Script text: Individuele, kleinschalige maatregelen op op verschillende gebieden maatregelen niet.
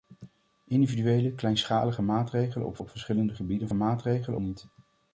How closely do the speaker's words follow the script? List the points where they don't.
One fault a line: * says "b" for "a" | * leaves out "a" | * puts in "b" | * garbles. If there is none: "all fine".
all fine